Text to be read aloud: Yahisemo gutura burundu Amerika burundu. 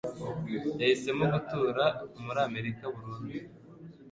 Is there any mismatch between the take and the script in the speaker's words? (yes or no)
yes